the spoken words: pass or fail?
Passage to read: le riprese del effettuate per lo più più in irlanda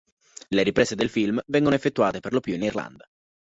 fail